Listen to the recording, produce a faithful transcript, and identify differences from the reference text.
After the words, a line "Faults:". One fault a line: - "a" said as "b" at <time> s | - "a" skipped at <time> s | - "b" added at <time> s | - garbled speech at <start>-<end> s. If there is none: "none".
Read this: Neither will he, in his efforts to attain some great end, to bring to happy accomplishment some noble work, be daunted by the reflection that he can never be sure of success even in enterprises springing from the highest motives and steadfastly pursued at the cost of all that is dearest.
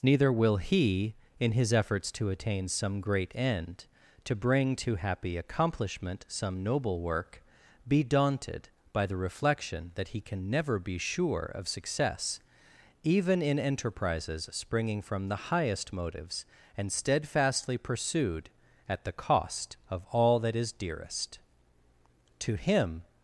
Neither will he, in his efforts to attain some great end, to bring to happy accomplishment some noble work, be daunted by the reflection that he can never be sure of success even in enterprises springing from the highest motives and steadfastly pursued at the cost of all that is dearest. To him
Faults:
- "To him" added at 22.4 s